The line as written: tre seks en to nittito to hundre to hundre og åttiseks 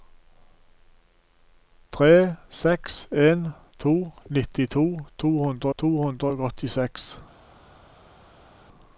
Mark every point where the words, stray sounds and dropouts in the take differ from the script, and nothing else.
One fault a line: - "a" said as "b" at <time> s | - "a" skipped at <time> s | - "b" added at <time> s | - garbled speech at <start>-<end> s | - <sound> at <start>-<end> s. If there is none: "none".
none